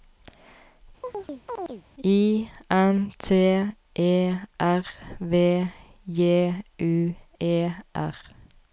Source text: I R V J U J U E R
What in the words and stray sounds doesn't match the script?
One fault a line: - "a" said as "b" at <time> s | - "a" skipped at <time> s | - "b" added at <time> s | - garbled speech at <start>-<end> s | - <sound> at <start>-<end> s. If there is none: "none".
- chirp at 1.0-1.8 s
- "N T E" added at 2.7 s
- "J U" skipped at 7.2 s